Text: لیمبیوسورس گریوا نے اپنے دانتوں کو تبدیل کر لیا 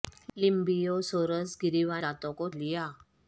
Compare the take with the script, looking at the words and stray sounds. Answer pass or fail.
fail